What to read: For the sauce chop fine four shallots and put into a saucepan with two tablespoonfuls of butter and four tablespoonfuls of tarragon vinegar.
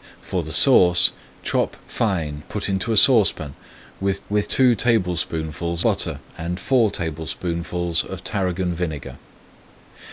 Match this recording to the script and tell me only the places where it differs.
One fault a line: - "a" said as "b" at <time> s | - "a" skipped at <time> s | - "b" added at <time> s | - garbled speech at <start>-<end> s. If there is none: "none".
- "four shallots and" skipped at 2.4 s
- "with" added at 4.3 s
- "of" skipped at 5.8 s